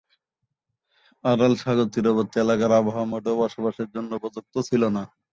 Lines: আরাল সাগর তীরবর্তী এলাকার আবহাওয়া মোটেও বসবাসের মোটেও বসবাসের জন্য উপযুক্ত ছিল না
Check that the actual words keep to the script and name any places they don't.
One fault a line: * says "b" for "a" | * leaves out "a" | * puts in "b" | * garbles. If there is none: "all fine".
* leaves out "মোটেও বসবাসের"